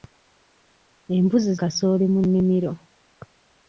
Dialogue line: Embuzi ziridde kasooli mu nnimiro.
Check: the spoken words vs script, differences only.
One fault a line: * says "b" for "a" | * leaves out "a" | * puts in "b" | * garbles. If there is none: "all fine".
* leaves out "ziridde"